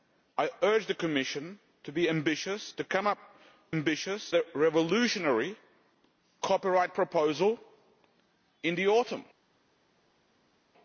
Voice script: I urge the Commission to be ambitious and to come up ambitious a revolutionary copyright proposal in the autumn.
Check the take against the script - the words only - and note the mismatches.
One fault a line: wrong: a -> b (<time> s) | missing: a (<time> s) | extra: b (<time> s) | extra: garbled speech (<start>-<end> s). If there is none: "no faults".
no faults